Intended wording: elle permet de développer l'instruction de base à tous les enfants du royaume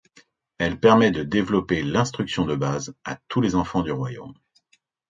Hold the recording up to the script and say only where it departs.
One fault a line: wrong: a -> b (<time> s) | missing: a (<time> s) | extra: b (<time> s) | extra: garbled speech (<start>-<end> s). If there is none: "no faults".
no faults